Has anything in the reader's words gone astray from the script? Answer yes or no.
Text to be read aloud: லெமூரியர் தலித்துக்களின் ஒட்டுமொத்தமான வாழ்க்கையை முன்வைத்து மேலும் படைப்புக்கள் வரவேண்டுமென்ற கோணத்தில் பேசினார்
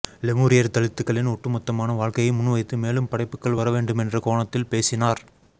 no